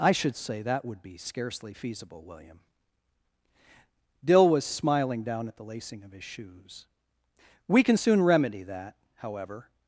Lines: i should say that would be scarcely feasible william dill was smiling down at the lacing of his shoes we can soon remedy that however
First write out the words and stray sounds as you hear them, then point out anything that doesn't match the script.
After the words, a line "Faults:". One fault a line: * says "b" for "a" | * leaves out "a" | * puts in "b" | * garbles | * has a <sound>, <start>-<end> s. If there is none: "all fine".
i should say that would be scarcely feasible william dill was smiling down at the lacing of his shoes we can soon remedy that however
Faults:
all fine